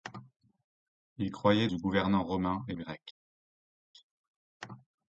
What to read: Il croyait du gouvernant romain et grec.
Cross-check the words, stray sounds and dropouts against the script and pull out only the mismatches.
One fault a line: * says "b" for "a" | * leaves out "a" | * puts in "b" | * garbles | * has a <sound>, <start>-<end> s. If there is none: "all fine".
all fine